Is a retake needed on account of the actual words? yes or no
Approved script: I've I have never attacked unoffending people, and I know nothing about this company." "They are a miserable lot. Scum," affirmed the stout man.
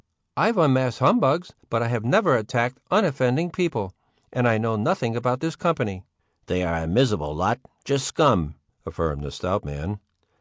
yes